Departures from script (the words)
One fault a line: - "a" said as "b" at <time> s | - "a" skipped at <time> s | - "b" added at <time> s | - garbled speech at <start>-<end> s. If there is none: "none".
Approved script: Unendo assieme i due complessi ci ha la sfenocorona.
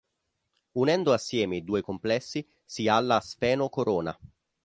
- "ci" said as "si" at 2.6 s